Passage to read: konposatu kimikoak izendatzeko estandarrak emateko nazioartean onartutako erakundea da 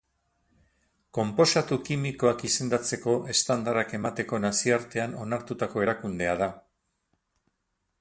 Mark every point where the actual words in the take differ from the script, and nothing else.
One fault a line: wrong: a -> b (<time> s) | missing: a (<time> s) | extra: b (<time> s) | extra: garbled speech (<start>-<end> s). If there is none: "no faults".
no faults